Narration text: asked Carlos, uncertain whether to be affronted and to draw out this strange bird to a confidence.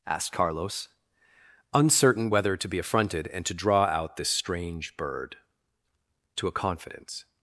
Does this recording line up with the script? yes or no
yes